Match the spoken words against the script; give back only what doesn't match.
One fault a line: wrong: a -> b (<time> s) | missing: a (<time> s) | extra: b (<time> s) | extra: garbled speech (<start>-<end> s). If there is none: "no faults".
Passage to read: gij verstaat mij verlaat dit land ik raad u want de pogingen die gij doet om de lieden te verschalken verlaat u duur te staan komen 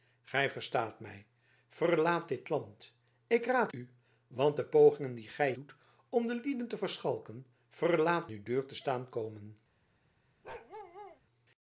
no faults